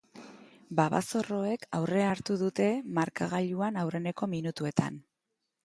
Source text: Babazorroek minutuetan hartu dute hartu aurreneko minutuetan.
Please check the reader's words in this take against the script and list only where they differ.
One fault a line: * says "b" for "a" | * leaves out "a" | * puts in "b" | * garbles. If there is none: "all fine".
* says "aurrea" for "minutuetan"
* says "markagailuan" for "hartu"